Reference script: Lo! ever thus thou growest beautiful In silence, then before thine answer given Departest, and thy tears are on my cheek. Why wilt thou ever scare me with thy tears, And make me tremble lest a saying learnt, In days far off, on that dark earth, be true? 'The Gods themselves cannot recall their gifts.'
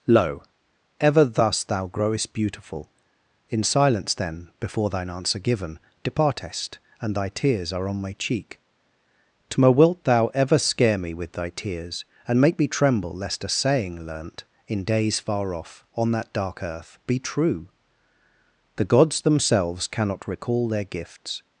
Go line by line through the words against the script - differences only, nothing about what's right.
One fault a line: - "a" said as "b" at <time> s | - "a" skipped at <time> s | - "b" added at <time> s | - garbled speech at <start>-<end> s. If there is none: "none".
- "Why" said as "Tma" at 9.5 s